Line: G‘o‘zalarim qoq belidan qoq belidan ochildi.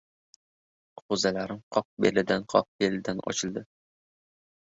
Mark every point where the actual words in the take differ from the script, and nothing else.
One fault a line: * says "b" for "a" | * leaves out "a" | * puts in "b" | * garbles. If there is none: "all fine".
all fine